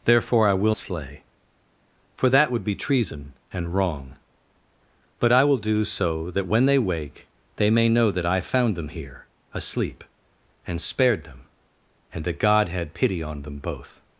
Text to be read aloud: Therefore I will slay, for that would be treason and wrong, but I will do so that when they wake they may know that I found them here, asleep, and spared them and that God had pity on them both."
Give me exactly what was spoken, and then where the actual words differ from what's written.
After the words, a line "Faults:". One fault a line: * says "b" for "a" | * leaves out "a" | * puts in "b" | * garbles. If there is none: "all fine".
Therefore I will slay, for that would be treason and wrong, but I will do so that when they wake they may know that I found them here, asleep, and spared them and that God had pity on them both."
Faults:
all fine